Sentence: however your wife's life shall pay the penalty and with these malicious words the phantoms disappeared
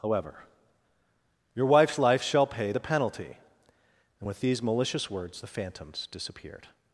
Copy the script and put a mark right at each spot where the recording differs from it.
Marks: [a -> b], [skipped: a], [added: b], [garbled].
however your wife's life shall pay the penalty and with these malicious words the phantoms disappeared